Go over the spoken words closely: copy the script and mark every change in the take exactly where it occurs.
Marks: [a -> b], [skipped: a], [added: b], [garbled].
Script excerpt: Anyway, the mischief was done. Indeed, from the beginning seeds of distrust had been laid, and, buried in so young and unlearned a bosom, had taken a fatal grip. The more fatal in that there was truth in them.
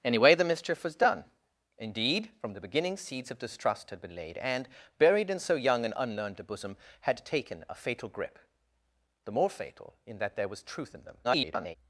Anyway, the mischief was done. Indeed, from the beginning seeds of distrust had been laid, and, buried in so young and unlearned a bosom, had taken a fatal grip. The more fatal in that there was truth in them. [garbled]